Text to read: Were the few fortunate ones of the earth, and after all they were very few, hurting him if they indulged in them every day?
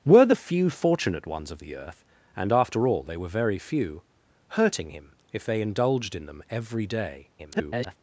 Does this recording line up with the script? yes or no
no